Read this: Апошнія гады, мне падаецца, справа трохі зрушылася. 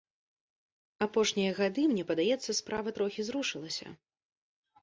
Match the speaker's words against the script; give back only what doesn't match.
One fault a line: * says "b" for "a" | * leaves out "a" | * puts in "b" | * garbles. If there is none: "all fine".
all fine